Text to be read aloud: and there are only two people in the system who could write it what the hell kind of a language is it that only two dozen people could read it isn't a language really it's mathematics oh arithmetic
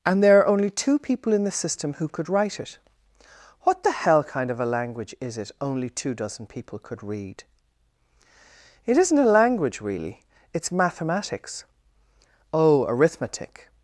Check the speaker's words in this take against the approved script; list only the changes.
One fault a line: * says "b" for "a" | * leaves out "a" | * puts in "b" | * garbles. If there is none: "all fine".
* leaves out "that"